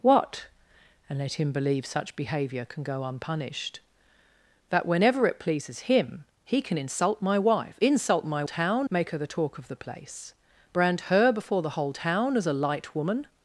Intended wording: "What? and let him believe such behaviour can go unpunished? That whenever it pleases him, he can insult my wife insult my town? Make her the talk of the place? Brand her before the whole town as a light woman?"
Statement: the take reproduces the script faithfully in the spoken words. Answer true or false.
true